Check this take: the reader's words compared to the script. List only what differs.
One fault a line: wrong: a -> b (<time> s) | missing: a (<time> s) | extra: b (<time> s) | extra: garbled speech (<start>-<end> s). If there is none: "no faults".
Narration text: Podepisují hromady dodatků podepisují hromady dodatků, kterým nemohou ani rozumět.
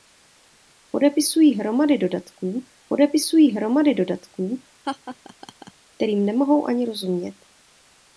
no faults